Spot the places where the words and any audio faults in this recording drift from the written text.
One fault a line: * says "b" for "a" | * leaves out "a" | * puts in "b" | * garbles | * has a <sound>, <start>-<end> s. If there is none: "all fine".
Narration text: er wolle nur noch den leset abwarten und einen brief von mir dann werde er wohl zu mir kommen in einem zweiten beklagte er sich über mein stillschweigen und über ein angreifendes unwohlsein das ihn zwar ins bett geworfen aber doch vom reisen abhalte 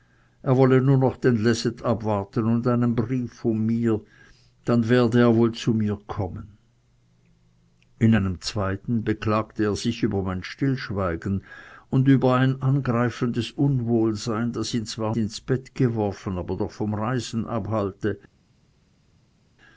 all fine